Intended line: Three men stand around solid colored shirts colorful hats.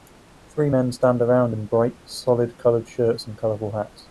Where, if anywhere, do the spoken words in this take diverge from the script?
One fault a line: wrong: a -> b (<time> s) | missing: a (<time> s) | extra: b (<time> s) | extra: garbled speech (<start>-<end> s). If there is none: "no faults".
extra: in bright (1.5 s)
extra: and (3.3 s)